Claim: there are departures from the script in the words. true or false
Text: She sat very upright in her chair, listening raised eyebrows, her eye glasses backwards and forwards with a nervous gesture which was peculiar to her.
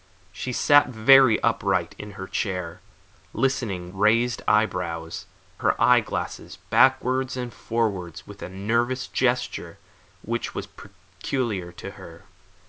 false